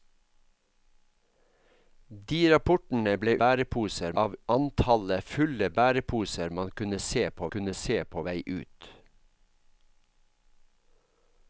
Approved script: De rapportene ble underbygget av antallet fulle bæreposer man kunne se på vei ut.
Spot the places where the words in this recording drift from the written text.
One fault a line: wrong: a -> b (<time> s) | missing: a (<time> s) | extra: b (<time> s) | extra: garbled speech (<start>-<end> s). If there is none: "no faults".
wrong: underbygget -> bæreposer (3.4 s)
extra: kunne se på (7.5 s)